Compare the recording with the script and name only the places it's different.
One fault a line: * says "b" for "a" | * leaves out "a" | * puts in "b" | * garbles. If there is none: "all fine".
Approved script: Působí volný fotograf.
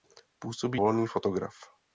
all fine